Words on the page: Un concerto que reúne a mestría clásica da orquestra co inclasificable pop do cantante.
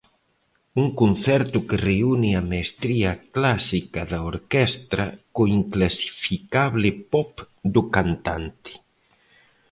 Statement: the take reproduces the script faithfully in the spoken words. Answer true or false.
true